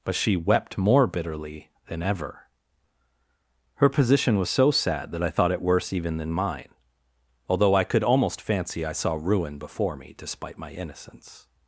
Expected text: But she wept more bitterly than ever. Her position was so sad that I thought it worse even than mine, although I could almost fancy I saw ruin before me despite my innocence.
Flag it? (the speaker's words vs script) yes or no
no